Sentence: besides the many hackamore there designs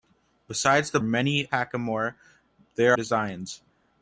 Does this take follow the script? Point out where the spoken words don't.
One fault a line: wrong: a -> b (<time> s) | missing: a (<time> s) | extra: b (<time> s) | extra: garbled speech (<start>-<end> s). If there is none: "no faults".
no faults